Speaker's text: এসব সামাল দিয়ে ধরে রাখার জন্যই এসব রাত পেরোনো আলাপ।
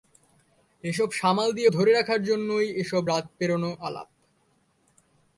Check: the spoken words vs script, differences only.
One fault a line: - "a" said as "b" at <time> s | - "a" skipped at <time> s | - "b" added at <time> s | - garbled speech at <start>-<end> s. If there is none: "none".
none